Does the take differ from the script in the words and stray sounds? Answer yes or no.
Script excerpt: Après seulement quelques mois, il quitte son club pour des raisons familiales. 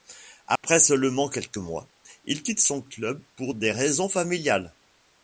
yes